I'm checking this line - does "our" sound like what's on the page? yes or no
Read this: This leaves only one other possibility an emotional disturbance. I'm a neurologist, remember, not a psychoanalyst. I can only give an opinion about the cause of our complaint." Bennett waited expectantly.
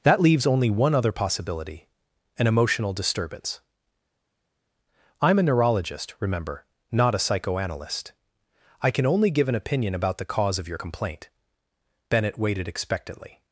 no